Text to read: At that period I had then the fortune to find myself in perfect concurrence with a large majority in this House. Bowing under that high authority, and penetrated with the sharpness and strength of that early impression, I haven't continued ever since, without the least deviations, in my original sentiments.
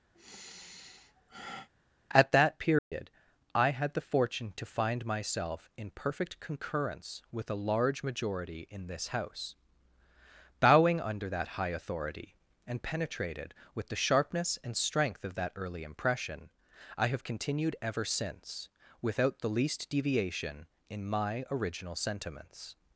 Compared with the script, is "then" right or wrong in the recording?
wrong